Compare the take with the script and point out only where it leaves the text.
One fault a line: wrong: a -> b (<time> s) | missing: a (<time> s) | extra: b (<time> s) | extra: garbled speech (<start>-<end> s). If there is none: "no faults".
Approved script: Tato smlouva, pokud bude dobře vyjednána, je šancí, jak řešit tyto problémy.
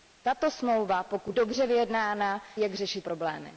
missing: bude (1.4 s)
missing: je šancí (2.4 s)
missing: tyto (3.0 s)